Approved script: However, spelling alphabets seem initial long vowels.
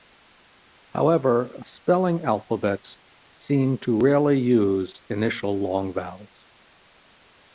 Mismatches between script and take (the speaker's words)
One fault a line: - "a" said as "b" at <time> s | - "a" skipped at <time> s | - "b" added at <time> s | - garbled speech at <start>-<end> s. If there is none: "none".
- "to rarely use" added at 3.8 s